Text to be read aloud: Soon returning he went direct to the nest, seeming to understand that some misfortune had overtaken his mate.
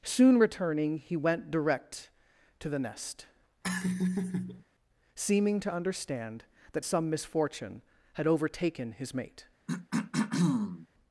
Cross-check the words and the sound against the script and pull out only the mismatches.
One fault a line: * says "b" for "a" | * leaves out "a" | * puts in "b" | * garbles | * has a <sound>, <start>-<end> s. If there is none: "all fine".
* has a laugh, 3.6-4.6 s
* has a throat clearing, 9.7-10.9 s